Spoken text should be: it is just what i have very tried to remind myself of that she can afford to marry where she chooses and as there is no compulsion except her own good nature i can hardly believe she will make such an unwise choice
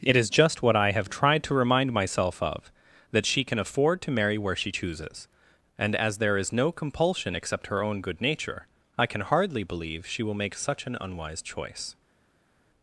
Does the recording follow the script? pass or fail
fail